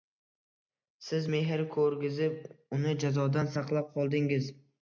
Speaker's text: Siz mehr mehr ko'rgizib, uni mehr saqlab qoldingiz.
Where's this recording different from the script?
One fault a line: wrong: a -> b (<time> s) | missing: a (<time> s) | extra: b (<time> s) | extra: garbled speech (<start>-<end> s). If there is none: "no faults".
missing: mehr (1.6 s)
wrong: mehr -> jazodan (3.0 s)